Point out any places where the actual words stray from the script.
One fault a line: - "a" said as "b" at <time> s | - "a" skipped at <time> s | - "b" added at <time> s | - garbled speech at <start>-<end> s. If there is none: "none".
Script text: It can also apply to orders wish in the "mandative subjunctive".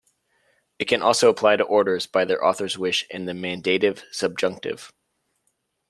- "by their author's" added at 2.1 s